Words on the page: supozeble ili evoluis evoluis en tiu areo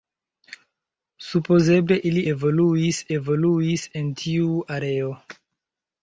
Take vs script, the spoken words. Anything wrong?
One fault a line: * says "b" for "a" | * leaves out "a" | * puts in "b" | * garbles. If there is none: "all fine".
all fine